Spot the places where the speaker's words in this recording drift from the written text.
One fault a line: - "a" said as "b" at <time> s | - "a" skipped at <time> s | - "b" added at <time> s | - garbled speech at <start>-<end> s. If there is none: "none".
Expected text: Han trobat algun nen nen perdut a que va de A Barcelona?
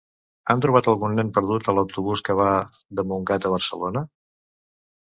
- "nen" skipped at 1.3 s
- "l'autobús" added at 1.8 s
- "Montgat" added at 3.1 s